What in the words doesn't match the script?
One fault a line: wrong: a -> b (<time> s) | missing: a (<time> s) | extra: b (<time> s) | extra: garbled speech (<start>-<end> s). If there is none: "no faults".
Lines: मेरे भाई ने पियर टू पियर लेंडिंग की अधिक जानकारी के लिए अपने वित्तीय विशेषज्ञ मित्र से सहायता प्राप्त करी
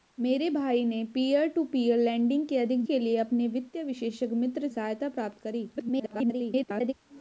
missing: जानकारी (2.8 s)
missing: से (4.7 s)
extra: garbled speech (5.8-6.9 s)